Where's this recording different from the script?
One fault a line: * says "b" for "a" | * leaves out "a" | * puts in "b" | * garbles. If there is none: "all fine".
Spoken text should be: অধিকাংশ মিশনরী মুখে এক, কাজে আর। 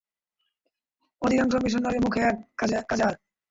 all fine